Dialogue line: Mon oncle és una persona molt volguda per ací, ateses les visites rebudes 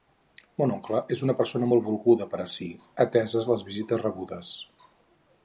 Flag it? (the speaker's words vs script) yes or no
no